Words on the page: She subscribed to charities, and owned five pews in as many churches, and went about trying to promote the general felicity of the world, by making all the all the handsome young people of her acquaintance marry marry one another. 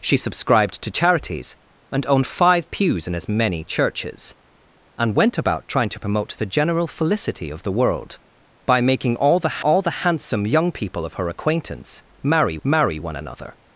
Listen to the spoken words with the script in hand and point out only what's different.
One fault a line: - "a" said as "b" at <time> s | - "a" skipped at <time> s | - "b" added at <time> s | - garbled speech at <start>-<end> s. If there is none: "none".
none